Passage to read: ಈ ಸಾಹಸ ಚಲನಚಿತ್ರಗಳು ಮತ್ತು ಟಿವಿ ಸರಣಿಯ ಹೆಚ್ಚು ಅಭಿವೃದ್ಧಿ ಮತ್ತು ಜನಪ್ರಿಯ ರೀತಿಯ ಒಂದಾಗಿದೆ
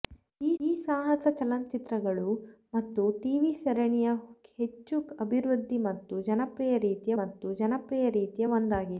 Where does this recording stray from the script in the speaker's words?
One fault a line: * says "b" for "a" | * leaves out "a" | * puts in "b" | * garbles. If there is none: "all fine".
* puts in "ಈ"
* puts in "ಮತ್ತು ಜನಪ್ರಿಯ ರೀತಿಯ"